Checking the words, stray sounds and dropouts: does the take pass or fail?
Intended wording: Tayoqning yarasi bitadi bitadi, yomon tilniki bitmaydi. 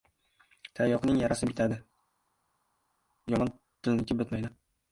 fail